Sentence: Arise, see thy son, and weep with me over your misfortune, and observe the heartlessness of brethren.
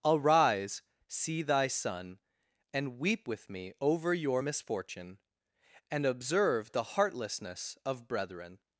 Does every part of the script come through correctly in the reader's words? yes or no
yes